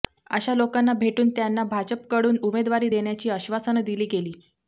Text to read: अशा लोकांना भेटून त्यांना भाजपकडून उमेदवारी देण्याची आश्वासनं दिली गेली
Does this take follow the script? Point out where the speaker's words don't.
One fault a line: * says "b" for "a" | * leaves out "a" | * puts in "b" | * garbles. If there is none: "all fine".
all fine